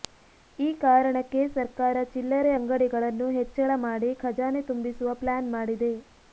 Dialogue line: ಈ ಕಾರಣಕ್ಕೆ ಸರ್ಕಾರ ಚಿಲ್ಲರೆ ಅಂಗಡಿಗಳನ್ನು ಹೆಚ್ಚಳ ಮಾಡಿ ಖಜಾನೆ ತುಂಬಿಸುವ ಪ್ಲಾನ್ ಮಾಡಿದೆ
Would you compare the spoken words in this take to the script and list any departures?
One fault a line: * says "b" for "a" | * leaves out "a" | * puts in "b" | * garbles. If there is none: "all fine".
all fine